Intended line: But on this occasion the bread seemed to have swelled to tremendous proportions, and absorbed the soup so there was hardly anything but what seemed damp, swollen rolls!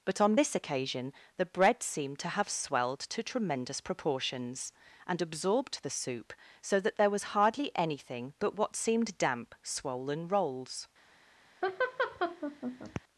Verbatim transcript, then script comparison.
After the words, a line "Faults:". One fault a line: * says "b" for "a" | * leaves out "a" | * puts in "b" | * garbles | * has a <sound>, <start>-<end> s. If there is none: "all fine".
But on this occasion the bread seemed to have swelled to tremendous proportions, and absorbed the soup so that there was hardly anything but what seemed damp, swollen rolls!
Faults:
* puts in "that"
* has a laugh, 11.6-13.0 s